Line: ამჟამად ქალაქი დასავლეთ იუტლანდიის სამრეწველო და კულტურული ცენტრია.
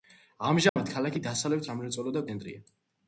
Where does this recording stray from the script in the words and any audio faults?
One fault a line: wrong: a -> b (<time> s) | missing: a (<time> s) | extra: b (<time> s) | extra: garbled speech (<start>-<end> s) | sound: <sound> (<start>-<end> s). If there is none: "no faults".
sound: dropout (0.7-0.8 s)
missing: იუტლანდიის (1.7 s)
missing: კულტურული (2.3 s)